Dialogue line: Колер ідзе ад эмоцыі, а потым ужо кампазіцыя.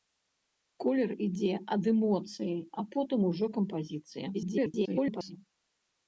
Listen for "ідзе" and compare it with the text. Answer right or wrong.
right